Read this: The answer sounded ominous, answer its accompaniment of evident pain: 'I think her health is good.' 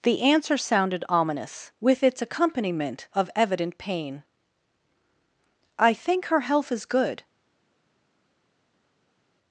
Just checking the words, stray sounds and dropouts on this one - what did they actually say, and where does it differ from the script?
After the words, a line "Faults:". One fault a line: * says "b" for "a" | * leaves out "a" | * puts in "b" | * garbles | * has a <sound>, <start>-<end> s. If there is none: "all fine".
The answer sounded ominous, with its accompaniment of evident pain: 'I think her health is good.'
Faults:
* says "with" for "answer"